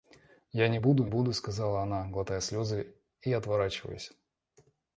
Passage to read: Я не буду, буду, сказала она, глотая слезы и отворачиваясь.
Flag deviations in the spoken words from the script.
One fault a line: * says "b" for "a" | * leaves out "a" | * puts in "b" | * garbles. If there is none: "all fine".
all fine